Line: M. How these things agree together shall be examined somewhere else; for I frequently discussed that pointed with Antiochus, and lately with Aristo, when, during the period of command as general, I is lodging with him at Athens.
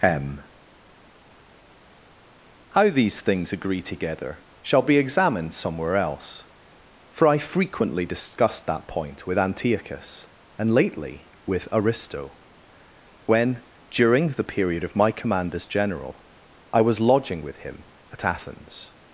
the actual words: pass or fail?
fail